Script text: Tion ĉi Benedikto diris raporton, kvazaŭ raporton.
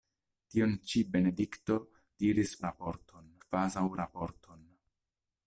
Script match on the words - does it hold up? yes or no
yes